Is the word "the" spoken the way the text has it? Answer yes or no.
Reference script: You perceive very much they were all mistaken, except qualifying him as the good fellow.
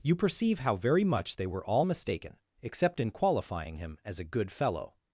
no